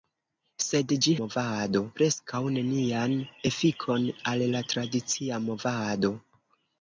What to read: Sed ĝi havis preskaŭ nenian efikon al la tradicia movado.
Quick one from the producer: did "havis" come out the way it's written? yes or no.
no